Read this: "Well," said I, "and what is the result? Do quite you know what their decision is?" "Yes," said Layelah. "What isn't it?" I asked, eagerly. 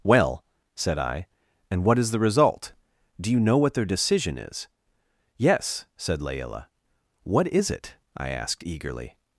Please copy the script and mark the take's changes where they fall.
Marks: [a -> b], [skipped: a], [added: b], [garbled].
"Well," said I, "and what is the result? Do [skipped: quite] you know what their decision is?" "Yes," said Layelah. "What [isn't -> is] it?" I asked, eagerly.